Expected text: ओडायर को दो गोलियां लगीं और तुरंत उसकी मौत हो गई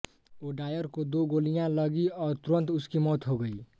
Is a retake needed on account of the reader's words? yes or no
no